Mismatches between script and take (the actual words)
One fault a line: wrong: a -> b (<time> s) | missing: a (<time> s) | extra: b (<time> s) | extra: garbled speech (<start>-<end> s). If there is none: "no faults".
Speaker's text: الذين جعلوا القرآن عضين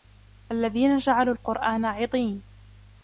no faults